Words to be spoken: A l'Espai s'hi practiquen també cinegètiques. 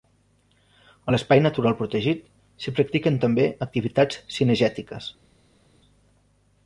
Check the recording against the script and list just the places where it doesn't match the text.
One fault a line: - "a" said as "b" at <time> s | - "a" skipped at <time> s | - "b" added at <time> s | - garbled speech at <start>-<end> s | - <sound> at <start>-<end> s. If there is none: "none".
- "natural protegit" added at 1.5 s
- "activitats" added at 3.7 s